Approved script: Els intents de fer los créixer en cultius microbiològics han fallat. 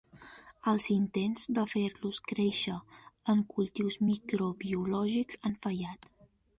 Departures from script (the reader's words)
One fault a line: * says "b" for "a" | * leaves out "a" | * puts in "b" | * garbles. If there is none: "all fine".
all fine